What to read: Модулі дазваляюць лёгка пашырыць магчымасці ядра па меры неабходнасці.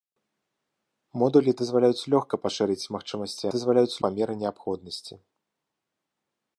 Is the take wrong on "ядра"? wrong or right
wrong